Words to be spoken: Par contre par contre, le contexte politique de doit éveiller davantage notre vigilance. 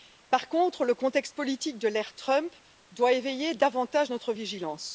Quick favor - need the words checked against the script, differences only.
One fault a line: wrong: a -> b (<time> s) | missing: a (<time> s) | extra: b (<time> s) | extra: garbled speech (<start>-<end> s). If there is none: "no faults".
missing: par contre (0.8 s)
extra: l'ère Trump (1.9 s)